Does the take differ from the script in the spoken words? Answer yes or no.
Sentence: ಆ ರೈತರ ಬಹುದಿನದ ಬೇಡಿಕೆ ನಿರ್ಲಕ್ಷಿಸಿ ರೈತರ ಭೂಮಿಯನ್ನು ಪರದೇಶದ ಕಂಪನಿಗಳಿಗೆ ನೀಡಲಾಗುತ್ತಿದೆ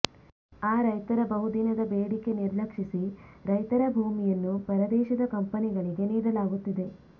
no